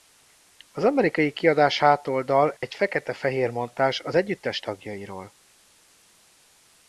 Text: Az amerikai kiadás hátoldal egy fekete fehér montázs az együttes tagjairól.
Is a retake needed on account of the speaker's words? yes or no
no